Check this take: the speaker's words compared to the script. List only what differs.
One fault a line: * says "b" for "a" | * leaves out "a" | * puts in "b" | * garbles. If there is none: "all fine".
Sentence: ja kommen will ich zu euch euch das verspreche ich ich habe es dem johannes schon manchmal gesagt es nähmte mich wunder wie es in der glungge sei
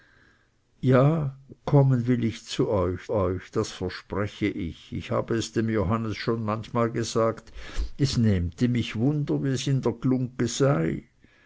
all fine